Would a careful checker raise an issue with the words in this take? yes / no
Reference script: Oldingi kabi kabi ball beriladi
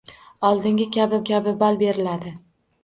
no